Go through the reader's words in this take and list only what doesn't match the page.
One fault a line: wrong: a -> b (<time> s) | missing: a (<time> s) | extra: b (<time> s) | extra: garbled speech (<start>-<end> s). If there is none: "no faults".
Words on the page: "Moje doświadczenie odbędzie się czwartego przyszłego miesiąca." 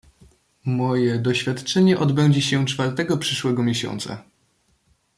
no faults